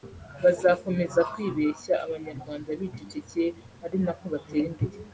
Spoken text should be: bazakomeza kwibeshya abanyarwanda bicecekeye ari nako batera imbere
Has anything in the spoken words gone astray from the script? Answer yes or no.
no